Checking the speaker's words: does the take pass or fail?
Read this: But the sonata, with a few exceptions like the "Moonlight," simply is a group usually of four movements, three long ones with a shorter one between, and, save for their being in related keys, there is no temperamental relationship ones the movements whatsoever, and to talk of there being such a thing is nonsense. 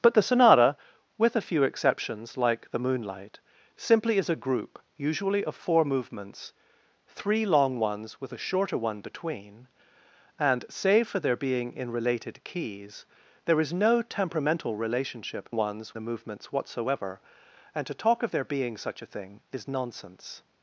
pass